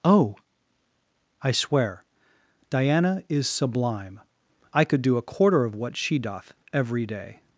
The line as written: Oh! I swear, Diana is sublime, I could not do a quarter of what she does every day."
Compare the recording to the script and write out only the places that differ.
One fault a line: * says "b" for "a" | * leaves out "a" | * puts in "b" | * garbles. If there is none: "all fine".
* leaves out "not"
* says "doth" for "does"